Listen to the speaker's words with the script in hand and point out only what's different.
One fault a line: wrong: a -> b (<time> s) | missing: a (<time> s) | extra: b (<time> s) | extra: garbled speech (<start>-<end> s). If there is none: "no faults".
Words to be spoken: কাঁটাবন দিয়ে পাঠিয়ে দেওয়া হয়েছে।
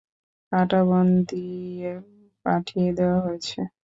no faults